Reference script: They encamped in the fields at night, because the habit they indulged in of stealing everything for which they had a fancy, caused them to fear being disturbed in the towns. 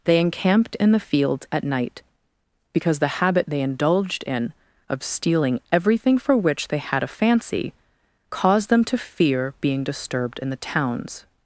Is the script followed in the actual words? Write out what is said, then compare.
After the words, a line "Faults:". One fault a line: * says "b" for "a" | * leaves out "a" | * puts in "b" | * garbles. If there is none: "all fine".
They encamped in the fields at night, because the habit they indulged in of stealing everything for which they had a fancy, caused them to fear being disturbed in the towns.
Faults:
all fine